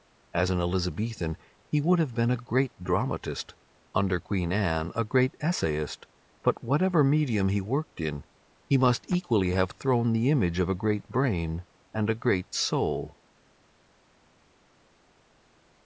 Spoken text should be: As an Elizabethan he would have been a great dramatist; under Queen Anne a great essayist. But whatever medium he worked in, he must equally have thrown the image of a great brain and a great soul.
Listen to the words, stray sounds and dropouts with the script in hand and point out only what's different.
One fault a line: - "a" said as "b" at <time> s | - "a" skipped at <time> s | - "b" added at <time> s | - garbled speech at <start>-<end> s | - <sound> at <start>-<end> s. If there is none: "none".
none